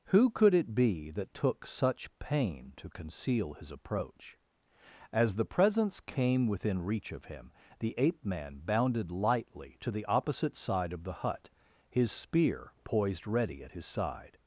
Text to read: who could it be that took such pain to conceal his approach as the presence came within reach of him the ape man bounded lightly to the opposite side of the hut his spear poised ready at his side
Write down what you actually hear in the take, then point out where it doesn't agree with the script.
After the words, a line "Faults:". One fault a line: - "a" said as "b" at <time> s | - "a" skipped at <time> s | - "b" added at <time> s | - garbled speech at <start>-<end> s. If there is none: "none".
who could it be that took such pain to conceal his approach as the presence came within reach of him the ape man bounded lightly to the opposite side of the hut his spear poised ready at his side
Faults:
none